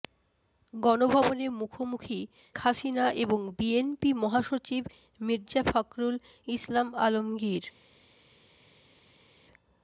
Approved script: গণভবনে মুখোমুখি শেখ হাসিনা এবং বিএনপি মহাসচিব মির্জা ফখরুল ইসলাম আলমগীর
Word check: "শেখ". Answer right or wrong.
wrong